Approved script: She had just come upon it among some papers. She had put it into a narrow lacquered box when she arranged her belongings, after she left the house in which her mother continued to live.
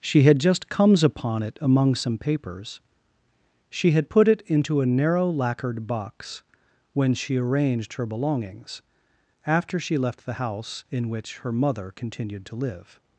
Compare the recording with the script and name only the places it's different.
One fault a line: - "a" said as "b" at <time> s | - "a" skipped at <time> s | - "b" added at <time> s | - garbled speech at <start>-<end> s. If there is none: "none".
- "come" said as "comes" at 0.7 s